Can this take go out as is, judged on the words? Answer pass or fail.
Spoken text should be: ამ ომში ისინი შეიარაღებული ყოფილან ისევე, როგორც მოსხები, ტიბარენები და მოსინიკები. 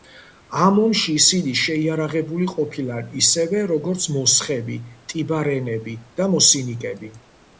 pass